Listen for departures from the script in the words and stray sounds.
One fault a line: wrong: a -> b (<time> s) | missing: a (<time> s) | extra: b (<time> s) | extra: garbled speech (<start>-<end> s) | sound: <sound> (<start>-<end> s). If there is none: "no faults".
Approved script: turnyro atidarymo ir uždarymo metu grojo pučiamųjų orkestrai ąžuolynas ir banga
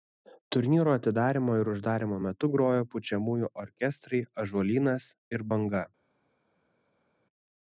no faults